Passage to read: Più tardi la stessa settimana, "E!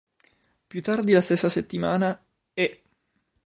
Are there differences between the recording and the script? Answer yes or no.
no